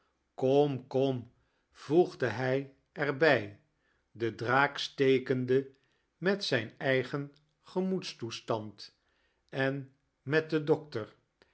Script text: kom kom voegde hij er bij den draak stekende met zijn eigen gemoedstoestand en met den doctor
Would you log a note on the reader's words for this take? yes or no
no